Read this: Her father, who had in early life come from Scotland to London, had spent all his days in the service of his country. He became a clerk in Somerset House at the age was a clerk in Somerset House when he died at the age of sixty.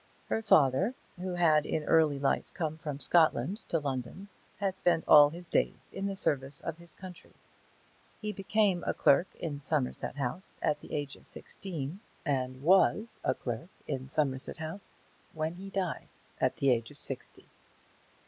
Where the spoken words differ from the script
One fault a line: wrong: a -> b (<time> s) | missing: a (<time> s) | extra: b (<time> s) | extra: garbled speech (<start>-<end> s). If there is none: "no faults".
extra: of sixteen and (11.2 s)